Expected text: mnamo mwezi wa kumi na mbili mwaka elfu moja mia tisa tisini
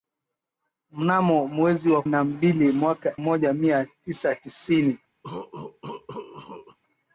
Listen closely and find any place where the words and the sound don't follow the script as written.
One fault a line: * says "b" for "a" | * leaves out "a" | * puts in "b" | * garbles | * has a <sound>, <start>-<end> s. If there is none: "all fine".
* leaves out "kumi"
* leaves out "elfu"
* has a cough, 5.2-6.8 s